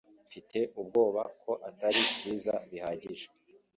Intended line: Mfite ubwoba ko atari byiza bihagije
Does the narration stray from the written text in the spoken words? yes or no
no